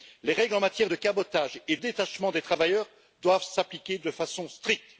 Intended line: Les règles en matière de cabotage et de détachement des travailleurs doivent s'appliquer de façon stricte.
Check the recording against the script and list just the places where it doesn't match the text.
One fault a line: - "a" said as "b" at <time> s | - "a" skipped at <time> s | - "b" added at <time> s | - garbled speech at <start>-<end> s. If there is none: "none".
- "de" skipped at 1.8 s